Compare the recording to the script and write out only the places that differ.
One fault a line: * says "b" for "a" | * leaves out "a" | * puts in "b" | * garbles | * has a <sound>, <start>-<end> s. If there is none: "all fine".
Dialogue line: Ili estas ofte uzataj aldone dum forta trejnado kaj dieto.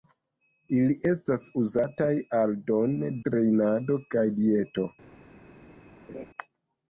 * leaves out "ofte"
* leaves out "dum forta"
* has a laugh, 6.1-6.3 s